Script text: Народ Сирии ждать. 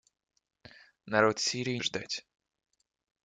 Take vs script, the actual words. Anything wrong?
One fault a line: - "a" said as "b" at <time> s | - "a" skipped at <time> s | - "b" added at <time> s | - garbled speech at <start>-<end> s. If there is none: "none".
none